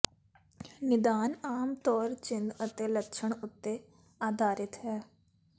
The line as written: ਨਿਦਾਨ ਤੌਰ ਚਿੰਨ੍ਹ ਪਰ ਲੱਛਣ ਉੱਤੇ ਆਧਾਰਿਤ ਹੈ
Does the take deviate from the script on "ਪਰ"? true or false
true